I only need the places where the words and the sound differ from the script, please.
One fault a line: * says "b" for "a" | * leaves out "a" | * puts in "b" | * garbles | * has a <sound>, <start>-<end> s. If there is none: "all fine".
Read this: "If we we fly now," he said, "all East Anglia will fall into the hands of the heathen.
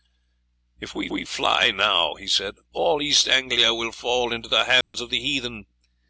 * has a dropout, 4.8-4.9 s